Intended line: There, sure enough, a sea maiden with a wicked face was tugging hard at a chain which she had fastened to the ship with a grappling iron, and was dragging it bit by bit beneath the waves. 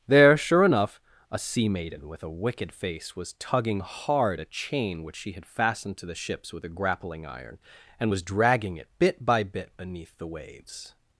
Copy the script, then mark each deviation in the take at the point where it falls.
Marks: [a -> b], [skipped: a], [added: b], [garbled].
There, sure enough, a sea maiden with a wicked face was tugging hard [skipped: at] a chain which she had fastened to the [ship -> ships] with a grappling iron, and was dragging it bit by bit beneath the waves.